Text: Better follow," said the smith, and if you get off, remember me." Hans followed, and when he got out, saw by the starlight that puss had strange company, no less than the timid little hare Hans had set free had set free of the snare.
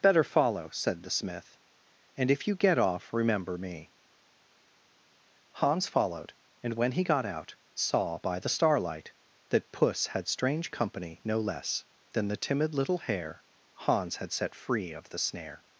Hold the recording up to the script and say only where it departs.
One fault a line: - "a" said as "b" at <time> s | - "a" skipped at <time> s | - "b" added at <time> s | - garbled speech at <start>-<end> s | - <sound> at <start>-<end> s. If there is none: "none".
- "had set free" skipped at 14.9 s